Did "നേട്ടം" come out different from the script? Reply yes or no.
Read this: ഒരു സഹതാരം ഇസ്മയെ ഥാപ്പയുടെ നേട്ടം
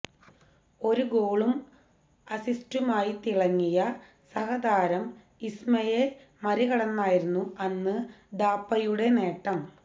no